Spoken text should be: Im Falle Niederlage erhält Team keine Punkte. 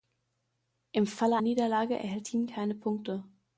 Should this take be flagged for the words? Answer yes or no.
no